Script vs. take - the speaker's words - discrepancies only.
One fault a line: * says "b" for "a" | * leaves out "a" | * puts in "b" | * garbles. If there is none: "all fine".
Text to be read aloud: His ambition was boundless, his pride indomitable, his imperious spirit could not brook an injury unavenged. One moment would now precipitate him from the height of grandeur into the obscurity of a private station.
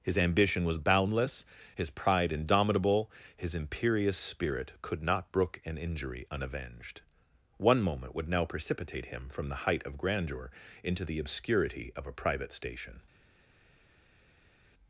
all fine